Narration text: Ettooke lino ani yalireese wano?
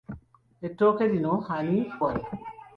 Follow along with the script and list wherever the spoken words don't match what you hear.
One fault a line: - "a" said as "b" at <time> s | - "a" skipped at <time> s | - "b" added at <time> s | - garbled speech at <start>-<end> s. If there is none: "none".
- "yalireese" skipped at 1.8 s